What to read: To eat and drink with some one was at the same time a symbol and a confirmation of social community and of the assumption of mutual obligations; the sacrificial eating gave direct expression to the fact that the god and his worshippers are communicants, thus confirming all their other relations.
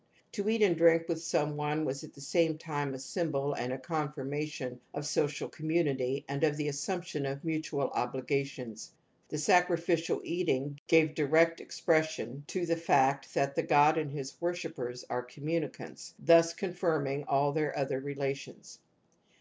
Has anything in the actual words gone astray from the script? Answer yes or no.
no